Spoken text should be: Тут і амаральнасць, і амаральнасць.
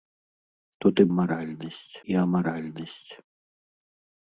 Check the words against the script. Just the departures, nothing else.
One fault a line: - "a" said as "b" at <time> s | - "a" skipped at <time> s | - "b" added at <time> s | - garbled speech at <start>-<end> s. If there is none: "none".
none